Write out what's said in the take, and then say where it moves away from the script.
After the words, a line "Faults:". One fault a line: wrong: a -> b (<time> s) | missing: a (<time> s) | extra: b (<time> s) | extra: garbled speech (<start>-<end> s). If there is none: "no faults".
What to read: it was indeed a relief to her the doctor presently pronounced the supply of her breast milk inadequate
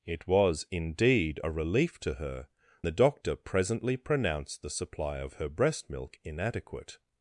it was indeed a relief to her the doctor presently pronounced the supply of her breast milk inadequate
Faults:
no faults